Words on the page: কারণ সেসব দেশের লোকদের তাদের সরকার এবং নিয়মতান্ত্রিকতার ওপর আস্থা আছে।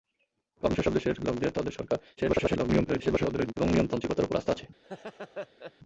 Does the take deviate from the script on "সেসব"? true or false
false